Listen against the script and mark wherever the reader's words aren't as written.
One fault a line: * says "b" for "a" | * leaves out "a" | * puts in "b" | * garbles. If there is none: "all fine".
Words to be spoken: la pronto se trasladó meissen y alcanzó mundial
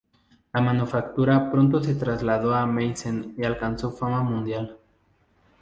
* puts in "manufactura"
* puts in "a"
* puts in "fama"